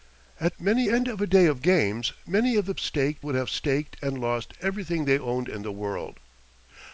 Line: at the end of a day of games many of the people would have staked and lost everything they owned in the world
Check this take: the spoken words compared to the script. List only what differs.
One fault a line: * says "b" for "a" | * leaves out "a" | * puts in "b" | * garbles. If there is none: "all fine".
* says "many" for "the"
* says "staked" for "people"